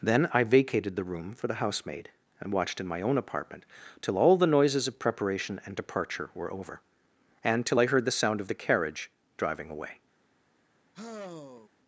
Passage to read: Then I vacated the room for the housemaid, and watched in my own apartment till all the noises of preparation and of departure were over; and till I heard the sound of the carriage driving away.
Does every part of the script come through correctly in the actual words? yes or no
no